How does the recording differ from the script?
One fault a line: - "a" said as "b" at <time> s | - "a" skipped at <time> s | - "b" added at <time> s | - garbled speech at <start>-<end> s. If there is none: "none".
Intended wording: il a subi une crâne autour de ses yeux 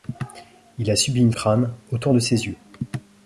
none